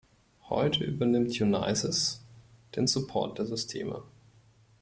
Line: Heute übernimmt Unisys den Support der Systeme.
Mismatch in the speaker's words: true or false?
false